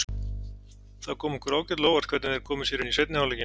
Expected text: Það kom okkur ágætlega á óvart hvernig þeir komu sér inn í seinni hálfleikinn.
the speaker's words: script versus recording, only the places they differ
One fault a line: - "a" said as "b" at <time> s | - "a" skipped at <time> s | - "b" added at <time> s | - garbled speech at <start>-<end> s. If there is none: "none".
none